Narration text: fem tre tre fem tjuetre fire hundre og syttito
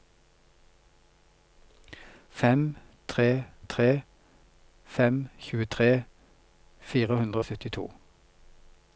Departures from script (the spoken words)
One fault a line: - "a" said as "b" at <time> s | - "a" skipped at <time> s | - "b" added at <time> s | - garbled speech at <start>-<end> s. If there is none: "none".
none